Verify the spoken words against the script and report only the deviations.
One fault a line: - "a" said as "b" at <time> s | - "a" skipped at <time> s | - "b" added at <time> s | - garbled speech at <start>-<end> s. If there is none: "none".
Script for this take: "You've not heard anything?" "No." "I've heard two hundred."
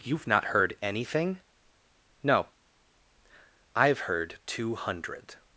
none